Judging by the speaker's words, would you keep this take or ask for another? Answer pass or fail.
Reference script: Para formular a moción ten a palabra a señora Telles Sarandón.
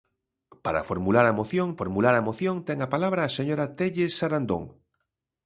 fail